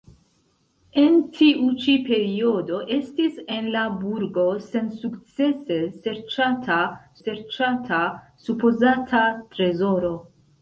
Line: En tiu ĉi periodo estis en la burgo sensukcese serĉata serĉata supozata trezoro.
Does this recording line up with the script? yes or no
yes